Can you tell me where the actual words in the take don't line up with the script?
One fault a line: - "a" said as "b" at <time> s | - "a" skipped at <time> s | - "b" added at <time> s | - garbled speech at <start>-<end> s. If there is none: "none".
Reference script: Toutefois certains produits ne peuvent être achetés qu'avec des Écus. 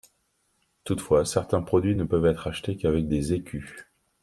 none